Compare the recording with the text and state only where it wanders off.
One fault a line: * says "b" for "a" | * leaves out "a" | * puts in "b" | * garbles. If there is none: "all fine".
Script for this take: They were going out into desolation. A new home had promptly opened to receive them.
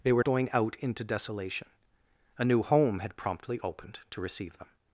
all fine